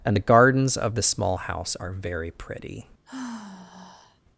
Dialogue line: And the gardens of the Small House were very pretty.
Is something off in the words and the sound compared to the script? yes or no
yes